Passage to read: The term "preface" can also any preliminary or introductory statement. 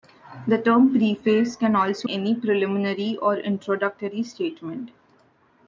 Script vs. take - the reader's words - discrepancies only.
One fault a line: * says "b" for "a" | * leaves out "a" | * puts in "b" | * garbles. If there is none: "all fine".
all fine